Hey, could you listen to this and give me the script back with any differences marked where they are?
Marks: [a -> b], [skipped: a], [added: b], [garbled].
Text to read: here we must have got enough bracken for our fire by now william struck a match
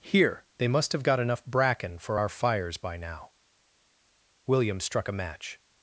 here [we -> they] must have got enough bracken for our [fire -> fires] by now william struck a match